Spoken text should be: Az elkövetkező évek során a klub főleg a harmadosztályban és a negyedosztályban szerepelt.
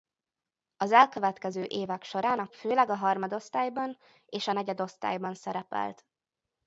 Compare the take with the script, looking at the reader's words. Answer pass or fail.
fail